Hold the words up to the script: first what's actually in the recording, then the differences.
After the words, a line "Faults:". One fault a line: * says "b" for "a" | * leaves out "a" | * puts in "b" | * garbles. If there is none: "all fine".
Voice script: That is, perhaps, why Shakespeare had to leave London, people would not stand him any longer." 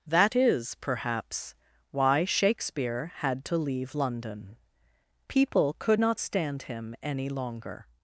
That is, perhaps, why Shakespeare had to leave London, people could not stand him any longer."
Faults:
* says "could" for "would"